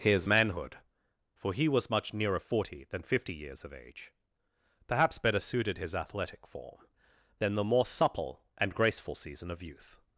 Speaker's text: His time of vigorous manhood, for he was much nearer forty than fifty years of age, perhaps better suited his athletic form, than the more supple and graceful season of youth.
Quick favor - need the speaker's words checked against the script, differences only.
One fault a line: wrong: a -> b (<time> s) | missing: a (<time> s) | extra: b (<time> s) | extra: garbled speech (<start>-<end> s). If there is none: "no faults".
missing: time of vigorous (0.3 s)